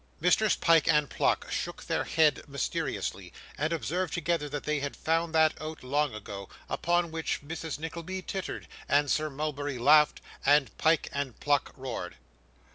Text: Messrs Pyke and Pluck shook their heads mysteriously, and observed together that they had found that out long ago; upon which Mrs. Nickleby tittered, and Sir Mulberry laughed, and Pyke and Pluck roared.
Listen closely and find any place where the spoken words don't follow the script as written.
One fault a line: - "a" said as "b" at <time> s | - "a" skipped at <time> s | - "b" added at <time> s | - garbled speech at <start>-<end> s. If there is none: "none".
none